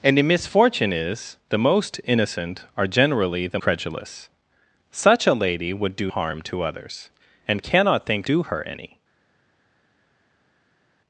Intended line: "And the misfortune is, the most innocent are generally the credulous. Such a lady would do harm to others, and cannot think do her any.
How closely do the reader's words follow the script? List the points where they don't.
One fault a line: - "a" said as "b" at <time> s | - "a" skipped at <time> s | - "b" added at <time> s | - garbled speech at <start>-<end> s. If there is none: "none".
none